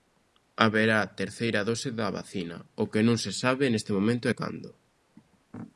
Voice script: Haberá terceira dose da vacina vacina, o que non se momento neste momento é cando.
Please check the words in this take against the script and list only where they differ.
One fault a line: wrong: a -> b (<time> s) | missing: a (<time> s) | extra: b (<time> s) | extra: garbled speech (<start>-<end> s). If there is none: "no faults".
missing: vacina (2.6 s)
wrong: momento -> sabe (3.4 s)